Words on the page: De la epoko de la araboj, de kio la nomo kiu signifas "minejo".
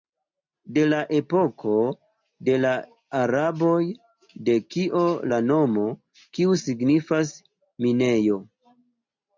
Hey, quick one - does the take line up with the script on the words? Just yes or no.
yes